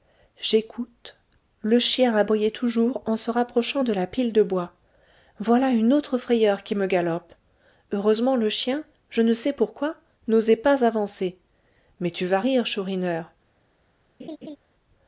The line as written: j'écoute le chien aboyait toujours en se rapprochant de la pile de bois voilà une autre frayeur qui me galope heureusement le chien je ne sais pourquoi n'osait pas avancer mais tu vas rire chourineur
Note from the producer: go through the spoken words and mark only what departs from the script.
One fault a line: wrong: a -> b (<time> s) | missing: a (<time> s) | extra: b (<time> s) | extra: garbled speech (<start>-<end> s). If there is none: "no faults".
no faults